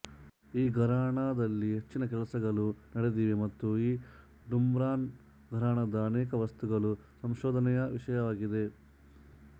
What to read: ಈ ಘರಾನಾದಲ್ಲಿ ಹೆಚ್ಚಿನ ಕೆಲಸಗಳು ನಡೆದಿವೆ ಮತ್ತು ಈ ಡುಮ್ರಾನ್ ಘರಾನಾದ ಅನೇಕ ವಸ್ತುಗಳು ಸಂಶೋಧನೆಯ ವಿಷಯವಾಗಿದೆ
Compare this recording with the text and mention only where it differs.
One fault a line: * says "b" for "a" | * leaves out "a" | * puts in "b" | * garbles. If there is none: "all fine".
all fine